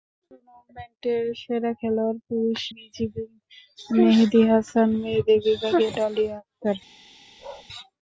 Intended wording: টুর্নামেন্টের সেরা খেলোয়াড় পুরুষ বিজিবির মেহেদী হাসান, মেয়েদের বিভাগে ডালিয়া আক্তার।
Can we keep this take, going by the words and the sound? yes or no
no